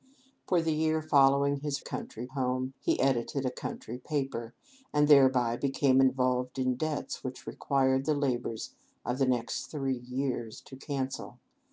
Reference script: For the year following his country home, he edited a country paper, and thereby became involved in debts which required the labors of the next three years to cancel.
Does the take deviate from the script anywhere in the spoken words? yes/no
no